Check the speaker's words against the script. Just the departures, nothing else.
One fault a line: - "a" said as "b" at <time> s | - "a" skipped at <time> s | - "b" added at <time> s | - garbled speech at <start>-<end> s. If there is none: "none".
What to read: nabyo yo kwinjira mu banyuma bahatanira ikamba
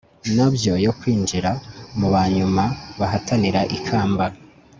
none